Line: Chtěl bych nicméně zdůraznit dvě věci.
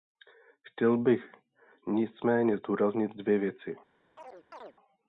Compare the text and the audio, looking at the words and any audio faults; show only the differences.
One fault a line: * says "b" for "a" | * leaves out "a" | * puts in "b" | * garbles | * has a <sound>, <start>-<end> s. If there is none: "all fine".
* has a chirp, 4.2-4.8 s